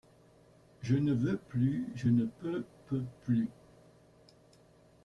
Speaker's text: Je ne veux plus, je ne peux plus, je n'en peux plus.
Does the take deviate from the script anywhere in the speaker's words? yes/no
yes